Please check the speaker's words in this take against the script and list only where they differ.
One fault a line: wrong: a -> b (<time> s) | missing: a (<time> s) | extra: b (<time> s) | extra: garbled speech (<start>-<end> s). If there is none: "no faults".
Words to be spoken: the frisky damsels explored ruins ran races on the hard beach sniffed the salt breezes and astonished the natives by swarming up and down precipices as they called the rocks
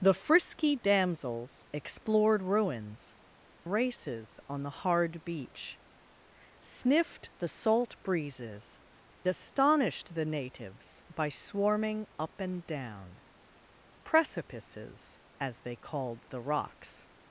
missing: ran (3.1 s)
missing: and (8.8 s)